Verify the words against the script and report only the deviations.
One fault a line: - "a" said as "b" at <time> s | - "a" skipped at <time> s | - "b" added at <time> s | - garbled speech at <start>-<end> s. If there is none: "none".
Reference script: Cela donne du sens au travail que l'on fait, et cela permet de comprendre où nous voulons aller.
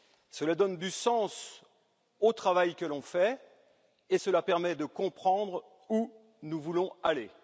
none